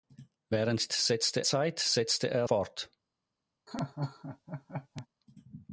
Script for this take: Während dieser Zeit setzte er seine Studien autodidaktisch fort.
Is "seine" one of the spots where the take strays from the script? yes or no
yes